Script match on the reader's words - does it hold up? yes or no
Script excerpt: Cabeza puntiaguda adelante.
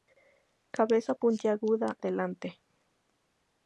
yes